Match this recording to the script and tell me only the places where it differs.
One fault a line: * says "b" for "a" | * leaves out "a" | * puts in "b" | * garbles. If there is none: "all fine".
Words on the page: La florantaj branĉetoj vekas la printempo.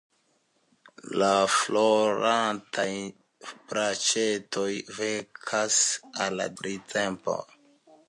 all fine